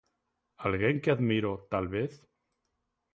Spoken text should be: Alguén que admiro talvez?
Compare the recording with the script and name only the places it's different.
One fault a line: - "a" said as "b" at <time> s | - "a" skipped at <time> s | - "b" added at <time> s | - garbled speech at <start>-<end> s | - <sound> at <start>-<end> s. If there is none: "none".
none